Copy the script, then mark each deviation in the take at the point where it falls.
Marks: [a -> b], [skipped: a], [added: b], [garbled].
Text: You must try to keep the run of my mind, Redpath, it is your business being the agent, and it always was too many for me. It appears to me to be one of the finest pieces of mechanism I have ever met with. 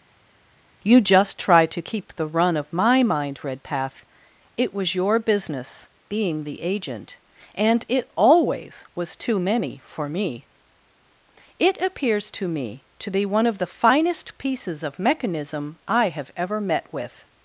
You [must -> just] try to keep the run of my mind, Redpath, it [is -> was] your business being the agent, and it always was too many for me. It appears to me to be one of the finest pieces of mechanism I have ever met with.